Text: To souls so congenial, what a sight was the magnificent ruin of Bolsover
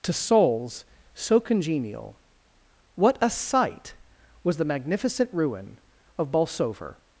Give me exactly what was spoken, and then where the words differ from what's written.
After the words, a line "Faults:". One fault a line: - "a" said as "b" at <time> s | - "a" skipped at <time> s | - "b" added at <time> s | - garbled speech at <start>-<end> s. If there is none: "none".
To souls so congenial, what a sight was the magnificent ruin of Bolsover
Faults:
none